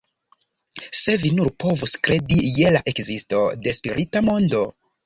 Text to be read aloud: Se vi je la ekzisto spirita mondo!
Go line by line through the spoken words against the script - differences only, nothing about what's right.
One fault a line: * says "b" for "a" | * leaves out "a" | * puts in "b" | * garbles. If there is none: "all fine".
* puts in "nur povus kredi"
* puts in "de"